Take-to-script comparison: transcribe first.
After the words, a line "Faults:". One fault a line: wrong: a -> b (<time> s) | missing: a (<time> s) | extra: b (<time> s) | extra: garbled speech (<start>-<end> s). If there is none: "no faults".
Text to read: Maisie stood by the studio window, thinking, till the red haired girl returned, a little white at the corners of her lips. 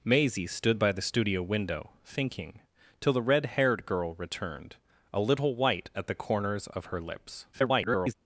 Maisie stood by the studio window, thinking, till the red haired girl returned, a little white at the corners of her lips. [garbled]
Faults:
extra: garbled speech (7.5-8.1 s)